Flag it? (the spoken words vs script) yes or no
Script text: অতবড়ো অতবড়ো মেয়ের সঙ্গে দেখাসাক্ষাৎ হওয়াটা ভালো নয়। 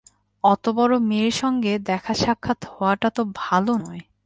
yes